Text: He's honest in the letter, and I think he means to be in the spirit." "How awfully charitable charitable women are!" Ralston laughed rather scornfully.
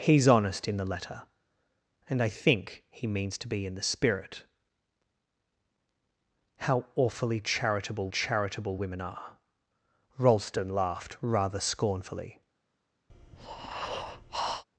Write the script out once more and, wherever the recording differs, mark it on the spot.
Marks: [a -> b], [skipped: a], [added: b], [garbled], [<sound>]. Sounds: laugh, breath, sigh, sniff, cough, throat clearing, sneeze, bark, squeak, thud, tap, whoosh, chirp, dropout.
He's honest in the letter, and I think he means to be in the spirit." "How awfully charitable charitable women are!" Ralston laughed rather scornfully. [breath]